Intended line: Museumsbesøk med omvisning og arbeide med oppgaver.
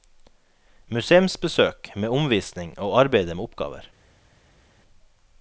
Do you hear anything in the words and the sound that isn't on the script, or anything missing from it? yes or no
no